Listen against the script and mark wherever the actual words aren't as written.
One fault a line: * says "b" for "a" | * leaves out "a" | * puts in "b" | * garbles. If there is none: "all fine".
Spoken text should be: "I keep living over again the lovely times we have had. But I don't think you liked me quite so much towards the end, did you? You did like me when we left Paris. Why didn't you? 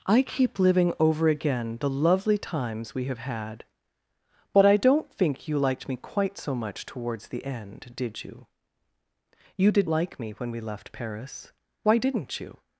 all fine